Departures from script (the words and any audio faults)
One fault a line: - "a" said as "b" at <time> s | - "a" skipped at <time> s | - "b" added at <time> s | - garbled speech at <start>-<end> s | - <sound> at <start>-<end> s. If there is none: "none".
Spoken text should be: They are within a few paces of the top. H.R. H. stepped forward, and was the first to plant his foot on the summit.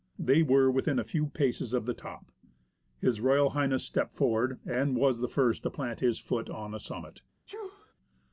- "are" said as "were" at 0.4 s
- sneeze at 7.5-7.9 s